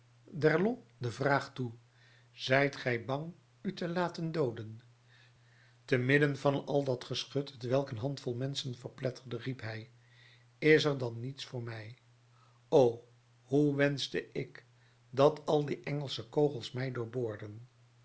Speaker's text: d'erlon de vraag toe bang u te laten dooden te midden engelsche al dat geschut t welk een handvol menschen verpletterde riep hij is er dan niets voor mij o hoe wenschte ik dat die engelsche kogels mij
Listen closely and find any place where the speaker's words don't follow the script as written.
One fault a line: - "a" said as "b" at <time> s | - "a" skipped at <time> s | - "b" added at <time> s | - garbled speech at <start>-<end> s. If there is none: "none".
- "zijt gij" added at 2.3 s
- "engelsche" said as "van" at 6.4 s
- "al" added at 15.4 s